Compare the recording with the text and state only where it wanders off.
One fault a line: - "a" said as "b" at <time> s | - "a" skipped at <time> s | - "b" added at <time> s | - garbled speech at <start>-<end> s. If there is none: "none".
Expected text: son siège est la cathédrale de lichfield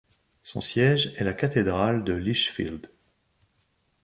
none